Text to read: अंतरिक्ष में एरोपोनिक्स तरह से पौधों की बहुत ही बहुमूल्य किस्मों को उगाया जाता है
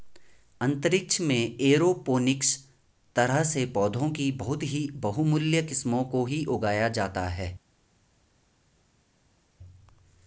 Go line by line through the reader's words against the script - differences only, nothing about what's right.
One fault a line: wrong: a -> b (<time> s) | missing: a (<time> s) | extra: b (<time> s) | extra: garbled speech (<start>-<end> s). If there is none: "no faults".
extra: ही (6.2 s)